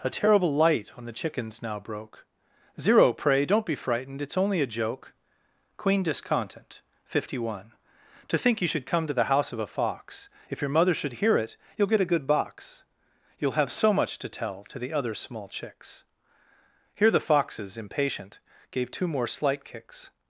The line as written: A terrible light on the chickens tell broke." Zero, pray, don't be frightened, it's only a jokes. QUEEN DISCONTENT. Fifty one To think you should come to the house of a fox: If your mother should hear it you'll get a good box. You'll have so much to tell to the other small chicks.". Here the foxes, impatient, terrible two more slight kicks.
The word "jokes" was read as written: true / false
false